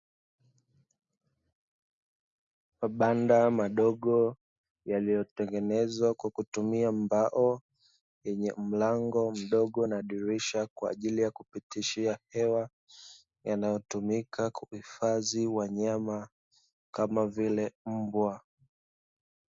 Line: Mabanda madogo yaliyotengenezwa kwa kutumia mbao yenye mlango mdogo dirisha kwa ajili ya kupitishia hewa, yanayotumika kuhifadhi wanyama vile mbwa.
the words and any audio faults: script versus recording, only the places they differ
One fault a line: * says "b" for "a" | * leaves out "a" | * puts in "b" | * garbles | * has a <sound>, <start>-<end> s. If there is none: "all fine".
* puts in "na"
* puts in "kama"